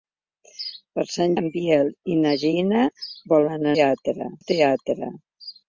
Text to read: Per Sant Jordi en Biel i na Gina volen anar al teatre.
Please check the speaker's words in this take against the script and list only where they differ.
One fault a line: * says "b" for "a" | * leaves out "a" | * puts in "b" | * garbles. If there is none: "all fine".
* leaves out "Jordi"
* says "teatre" for "anar"